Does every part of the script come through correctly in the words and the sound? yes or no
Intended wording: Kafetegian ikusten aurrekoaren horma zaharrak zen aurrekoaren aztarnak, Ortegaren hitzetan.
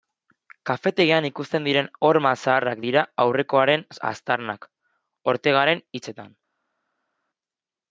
no